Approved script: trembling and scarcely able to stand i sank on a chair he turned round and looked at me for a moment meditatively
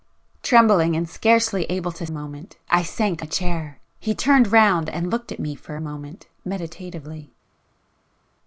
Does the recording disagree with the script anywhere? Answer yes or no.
yes